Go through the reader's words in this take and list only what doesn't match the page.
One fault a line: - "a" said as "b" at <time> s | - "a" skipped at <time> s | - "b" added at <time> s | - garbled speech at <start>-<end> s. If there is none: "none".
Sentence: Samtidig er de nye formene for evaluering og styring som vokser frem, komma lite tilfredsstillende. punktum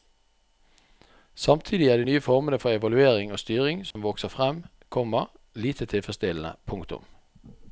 none